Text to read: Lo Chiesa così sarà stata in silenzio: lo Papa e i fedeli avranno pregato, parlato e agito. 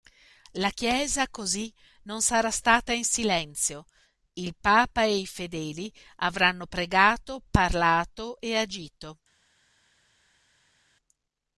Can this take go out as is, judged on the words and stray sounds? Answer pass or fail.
fail